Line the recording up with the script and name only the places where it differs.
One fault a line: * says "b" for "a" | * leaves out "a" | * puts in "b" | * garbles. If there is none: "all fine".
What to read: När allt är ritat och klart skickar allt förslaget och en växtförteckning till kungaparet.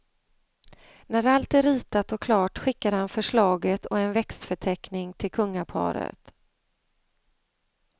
* says "han" for "allt"